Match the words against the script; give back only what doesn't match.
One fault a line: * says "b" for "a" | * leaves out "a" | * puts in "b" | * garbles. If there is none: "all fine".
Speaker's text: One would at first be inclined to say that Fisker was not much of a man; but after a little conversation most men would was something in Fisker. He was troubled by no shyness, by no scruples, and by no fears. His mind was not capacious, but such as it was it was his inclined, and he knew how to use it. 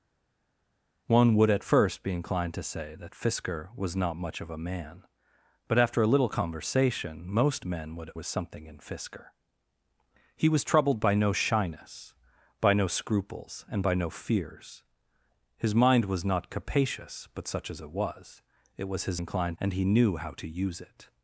all fine